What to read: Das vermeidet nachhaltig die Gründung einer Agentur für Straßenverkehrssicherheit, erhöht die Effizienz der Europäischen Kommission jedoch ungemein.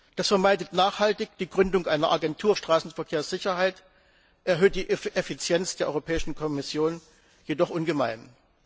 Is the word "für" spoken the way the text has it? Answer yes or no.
no